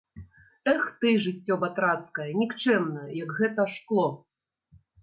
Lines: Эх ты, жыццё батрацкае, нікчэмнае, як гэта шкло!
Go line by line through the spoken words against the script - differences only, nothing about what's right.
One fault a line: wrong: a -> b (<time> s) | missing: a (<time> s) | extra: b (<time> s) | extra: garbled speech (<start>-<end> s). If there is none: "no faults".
no faults